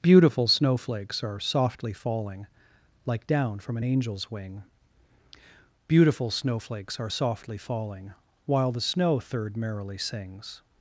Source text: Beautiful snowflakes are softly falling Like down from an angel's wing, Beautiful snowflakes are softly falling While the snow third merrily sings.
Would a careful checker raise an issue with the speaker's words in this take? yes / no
no